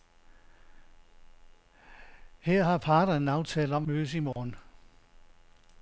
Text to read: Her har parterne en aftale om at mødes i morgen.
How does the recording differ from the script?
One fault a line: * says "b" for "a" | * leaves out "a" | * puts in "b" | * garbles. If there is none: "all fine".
* leaves out "at"